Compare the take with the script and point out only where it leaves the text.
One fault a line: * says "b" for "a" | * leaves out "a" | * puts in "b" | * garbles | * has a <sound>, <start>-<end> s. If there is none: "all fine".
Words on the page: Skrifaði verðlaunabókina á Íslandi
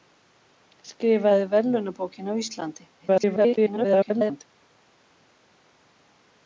* garbles